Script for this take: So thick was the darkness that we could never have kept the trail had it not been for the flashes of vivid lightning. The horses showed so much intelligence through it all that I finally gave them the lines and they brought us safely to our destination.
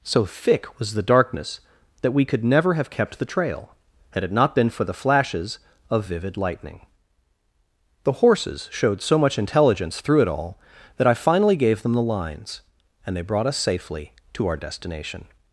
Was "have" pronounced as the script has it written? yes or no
yes